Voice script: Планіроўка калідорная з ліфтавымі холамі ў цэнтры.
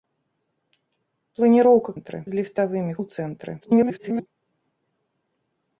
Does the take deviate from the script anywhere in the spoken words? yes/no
yes